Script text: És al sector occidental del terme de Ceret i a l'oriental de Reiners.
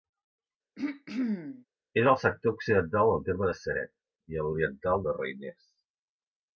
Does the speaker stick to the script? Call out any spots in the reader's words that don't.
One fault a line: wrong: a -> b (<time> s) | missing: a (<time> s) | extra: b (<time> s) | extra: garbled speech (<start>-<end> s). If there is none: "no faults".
no faults